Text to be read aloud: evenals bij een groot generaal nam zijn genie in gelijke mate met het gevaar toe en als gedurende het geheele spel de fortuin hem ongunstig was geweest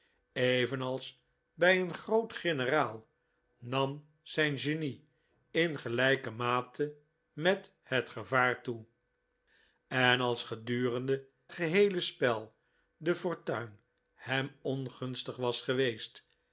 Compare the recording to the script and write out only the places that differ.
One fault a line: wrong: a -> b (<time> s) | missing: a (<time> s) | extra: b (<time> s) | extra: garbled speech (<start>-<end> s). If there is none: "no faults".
missing: het (11.3 s)